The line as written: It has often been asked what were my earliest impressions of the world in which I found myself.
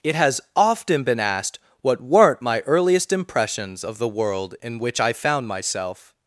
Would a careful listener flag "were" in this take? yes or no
yes